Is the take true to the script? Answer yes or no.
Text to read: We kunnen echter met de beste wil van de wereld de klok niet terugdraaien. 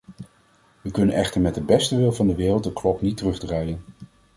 yes